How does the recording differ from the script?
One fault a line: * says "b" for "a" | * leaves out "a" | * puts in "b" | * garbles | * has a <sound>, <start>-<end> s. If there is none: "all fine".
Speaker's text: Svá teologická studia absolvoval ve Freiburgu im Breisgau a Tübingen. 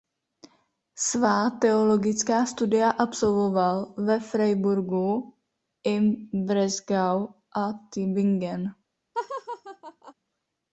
* has a laugh, 9.1-10.1 s